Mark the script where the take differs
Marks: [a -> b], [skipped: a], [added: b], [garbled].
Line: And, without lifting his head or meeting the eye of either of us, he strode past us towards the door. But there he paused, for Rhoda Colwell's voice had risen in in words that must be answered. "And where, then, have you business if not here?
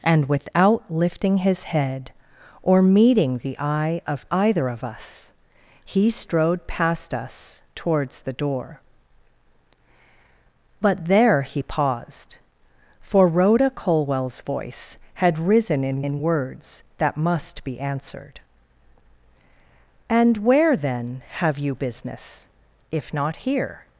And, without lifting his head or meeting the eye of either of us, he strode past us towards the door. But there he paused, for Rhoda Colwell's voice had risen in in words that must be answered. "And where, then, have you business if not here?